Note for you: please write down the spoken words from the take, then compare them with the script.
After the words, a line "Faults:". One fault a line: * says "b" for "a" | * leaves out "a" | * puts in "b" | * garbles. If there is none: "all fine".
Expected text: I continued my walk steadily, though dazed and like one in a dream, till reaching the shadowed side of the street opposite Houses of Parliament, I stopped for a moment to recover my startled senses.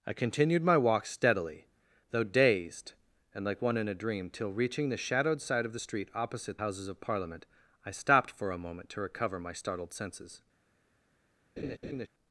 I continued my walk steadily, though dazed and like one in a dream, till reaching the shadowed side of the street opposite Houses of Parliament, I stopped for a moment to recover my startled senses.
Faults:
all fine